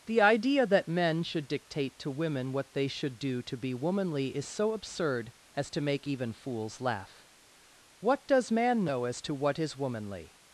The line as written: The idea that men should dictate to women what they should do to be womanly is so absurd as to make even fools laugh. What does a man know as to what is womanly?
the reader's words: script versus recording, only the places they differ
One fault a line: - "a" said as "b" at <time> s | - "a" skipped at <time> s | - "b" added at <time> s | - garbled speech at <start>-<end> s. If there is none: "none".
- "a" skipped at 8.5 s